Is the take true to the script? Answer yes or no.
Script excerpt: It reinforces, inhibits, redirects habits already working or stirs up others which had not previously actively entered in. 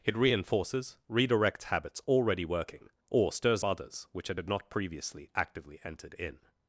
no